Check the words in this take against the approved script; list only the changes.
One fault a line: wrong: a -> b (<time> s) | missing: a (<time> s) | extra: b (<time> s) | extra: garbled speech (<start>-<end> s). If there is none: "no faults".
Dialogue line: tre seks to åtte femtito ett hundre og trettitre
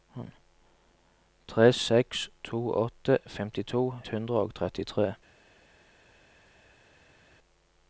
missing: ett (3.9 s)